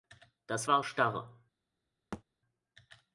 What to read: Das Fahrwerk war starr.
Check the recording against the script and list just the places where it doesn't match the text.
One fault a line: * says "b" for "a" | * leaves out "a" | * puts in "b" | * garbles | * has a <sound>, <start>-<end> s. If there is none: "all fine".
* leaves out "Fahrwerk"
* has a thud, 2.1-2.2 s